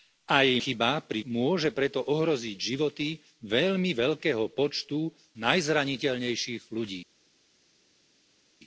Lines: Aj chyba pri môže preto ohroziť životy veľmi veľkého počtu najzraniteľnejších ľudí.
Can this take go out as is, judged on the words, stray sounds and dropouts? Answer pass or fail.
pass